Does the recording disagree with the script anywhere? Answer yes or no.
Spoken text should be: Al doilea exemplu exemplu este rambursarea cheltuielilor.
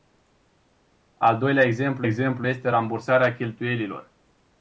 no